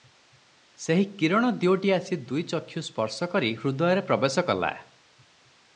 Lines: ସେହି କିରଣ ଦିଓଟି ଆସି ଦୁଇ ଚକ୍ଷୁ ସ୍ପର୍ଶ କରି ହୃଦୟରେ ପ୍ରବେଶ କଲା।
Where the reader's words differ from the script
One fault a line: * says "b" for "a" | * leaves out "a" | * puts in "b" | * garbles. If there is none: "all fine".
all fine